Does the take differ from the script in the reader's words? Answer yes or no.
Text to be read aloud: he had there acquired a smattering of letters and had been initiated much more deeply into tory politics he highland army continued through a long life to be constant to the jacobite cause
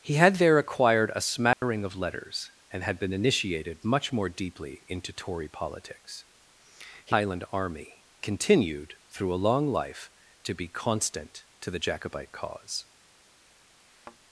no